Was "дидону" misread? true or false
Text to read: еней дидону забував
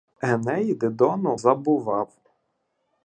false